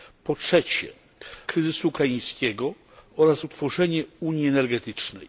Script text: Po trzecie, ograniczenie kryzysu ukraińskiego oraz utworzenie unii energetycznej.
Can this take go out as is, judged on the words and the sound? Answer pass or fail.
fail